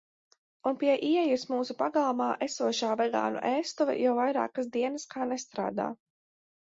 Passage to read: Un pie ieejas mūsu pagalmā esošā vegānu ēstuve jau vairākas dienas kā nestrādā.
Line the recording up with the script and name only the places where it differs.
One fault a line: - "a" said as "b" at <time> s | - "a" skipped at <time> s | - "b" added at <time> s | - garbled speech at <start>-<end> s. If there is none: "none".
none